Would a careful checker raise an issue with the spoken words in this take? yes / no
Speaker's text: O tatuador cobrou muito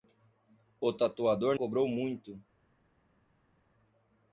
no